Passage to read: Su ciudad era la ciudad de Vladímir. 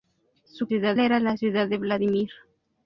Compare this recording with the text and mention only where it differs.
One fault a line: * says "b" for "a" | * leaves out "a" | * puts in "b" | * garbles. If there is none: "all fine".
all fine